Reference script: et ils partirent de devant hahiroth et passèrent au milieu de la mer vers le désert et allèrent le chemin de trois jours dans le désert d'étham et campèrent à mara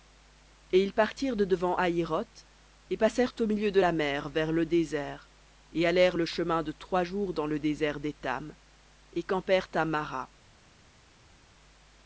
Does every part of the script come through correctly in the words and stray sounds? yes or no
yes